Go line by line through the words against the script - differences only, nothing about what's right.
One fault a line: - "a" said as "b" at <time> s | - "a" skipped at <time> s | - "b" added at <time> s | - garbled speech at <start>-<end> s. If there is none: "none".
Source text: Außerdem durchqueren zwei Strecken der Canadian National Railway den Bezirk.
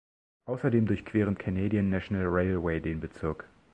- "zwei Strecken der" skipped at 1.4 s